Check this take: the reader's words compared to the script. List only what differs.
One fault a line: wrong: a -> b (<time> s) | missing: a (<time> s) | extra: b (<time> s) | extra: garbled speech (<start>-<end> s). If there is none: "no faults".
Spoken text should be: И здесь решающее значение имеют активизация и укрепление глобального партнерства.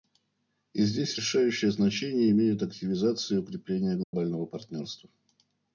no faults